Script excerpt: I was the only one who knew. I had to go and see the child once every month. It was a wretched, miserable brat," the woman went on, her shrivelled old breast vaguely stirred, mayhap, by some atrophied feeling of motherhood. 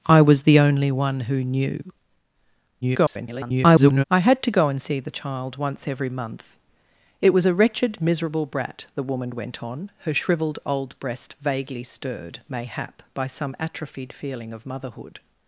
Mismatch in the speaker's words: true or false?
true